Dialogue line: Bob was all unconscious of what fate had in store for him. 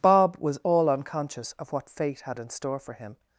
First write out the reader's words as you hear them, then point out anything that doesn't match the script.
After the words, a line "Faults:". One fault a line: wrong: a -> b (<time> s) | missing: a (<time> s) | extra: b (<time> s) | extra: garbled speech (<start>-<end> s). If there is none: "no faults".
Bob was all unconscious of what fate had in store for him.
Faults:
no faults